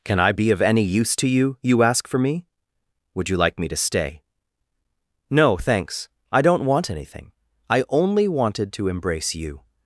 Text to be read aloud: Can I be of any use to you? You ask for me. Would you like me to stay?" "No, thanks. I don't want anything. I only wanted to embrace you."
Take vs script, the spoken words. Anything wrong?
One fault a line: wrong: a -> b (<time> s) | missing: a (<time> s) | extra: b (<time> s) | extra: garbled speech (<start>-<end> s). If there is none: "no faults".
no faults